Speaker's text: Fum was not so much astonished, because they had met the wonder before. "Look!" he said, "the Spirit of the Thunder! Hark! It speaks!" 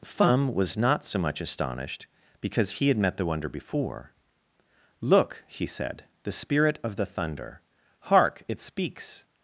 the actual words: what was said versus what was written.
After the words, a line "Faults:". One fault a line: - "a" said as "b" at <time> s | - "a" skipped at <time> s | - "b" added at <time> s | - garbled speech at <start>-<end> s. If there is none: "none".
Fum was not so much astonished, because he had met the wonder before. "Look!" he said, "the Spirit of the Thunder! Hark! It speaks!"
Faults:
- "they" said as "he" at 2.7 s